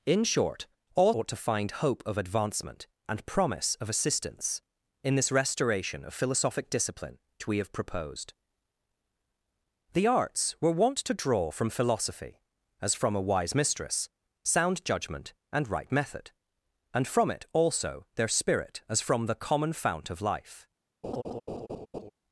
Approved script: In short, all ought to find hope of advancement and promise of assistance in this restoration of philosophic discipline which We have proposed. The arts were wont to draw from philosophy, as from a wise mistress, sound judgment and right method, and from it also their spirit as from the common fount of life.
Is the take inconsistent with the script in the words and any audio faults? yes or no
yes